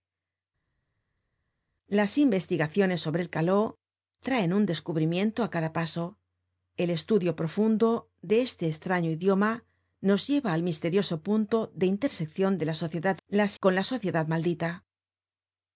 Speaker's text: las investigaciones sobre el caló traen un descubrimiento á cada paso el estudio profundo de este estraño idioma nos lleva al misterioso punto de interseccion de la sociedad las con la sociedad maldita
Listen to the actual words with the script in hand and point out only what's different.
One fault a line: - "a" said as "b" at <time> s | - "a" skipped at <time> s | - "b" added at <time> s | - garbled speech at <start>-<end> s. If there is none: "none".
none